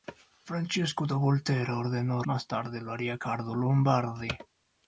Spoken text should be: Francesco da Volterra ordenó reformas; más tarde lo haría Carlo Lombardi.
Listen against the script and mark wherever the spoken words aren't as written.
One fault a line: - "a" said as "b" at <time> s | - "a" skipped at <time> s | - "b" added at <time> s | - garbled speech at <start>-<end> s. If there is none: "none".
- "reformas" skipped at 2.2 s